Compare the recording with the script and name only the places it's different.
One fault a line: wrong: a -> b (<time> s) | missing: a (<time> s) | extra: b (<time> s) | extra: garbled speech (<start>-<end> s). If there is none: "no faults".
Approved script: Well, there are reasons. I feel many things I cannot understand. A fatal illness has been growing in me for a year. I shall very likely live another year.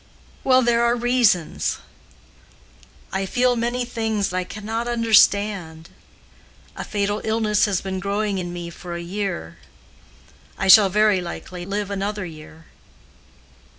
no faults